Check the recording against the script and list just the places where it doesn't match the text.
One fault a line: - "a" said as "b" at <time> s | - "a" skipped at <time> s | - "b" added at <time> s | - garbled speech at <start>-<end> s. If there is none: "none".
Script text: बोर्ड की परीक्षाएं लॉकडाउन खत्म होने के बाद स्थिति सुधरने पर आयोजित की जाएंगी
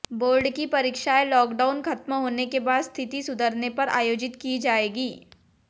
none